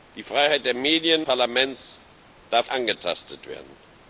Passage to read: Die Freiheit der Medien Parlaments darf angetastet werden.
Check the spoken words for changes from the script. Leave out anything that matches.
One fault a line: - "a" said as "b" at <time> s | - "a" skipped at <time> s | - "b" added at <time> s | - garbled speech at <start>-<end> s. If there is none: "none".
none